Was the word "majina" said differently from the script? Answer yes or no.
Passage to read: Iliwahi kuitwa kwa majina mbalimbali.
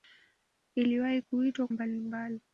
yes